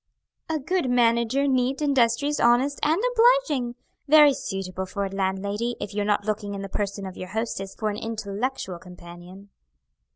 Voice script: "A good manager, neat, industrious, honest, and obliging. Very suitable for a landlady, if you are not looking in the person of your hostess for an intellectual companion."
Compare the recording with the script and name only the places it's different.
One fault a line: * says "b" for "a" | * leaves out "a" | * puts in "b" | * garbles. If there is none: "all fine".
all fine